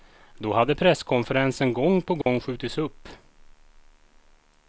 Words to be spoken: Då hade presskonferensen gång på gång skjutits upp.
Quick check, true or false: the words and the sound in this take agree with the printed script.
false